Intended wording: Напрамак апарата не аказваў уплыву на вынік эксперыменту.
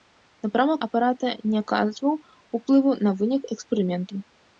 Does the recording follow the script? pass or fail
pass